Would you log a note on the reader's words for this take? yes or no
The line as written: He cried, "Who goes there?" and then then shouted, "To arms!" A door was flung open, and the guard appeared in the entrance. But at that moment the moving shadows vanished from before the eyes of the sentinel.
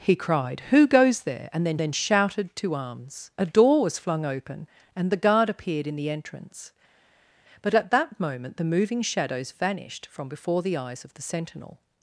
no